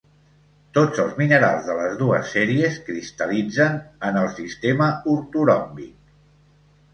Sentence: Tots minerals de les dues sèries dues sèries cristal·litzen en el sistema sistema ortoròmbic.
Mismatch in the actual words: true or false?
true